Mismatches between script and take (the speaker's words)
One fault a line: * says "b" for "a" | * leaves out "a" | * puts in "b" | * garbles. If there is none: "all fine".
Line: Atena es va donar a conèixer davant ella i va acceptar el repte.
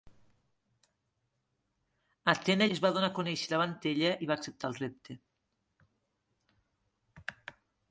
all fine